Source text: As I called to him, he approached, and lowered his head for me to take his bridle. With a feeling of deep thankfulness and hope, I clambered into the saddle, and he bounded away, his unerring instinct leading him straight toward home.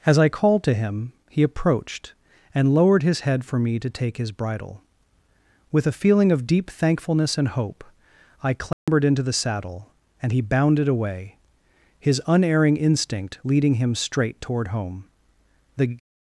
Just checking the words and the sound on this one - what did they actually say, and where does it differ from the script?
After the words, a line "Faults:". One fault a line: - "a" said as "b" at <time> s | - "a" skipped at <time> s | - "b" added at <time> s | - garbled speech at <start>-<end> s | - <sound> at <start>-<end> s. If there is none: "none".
As I called to him, he approached, and lowered his head for me to take his bridle. With a feeling of deep thankfulness and hope, I clambered into the saddle, and he bounded away, his unerring instinct leading him straight toward home. The
Faults:
- dropout at 8.7-8.9 s
- "The" added at 15.8 s